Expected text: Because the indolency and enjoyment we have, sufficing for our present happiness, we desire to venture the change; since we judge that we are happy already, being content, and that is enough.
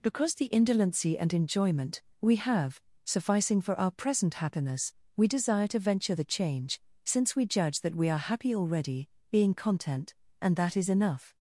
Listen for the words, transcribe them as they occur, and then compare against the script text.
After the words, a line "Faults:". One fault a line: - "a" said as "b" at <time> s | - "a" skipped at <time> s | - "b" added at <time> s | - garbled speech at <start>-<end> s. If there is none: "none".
Because the indolency and enjoyment we have, sufficing for our present happiness, we desire to venture the change; since we judge that we are happy already, being content, and that is enough.
Faults:
none